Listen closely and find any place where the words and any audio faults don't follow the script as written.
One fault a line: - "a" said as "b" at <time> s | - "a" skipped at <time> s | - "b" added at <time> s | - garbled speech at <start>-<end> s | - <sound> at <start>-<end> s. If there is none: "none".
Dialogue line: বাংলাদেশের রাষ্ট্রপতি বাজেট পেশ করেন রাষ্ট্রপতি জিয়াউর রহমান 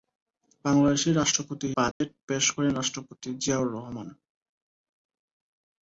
- dropout at 1.9-2.0 s